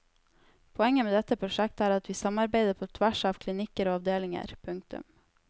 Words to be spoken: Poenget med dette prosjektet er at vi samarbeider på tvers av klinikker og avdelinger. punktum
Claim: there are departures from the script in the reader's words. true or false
false